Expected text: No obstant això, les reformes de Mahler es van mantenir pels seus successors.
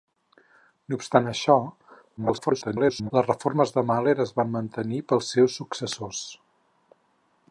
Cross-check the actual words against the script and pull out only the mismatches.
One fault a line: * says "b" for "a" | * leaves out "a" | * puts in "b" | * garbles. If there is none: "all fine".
* garbles